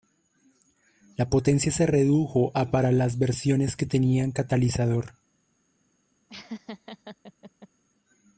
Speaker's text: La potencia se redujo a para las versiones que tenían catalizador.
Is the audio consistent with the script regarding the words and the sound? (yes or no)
no